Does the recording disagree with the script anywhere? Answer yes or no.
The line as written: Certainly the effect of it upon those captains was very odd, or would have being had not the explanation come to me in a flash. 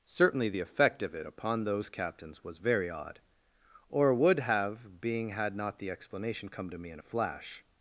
no